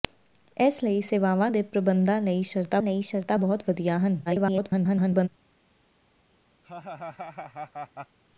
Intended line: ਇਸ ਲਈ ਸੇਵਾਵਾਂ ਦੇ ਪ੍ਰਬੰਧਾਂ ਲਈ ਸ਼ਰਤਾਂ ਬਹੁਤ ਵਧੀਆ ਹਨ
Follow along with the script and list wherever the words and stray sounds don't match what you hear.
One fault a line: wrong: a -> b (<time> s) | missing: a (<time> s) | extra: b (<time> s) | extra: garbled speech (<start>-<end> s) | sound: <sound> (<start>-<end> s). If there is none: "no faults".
extra: ਲਈ ਸ਼ਰਤਾਂ (2.8 s)
extra: garbled speech (4.3-5.3 s)
sound: laugh (6.6-8.2 s)